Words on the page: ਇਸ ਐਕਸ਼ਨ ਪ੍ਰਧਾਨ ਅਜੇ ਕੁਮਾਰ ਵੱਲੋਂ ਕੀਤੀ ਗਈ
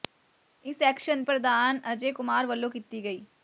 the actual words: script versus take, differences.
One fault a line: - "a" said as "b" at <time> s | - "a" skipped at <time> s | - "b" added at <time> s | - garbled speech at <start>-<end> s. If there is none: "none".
none